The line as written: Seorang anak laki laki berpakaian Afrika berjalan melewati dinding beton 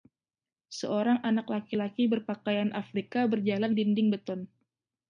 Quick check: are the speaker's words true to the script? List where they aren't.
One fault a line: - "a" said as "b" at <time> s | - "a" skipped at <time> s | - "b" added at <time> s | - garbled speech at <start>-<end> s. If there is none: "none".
- "melewati" skipped at 3.8 s